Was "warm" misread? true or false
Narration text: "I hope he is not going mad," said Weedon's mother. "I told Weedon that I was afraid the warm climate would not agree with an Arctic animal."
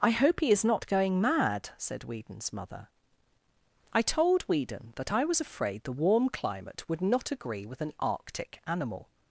false